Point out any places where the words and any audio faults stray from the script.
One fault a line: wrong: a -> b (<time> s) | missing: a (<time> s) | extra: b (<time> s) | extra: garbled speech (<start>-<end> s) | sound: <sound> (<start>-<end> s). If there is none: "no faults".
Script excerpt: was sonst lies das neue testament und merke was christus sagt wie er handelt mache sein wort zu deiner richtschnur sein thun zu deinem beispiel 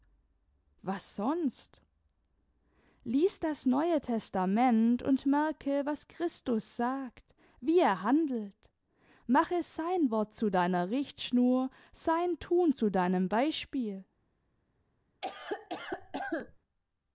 sound: cough (15.2-16.6 s)